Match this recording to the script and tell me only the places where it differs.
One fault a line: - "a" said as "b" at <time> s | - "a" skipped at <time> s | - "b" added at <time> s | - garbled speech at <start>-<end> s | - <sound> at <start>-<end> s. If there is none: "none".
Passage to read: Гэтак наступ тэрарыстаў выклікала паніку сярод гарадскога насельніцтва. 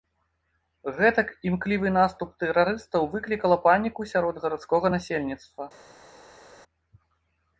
- "імклівы" added at 1.5 s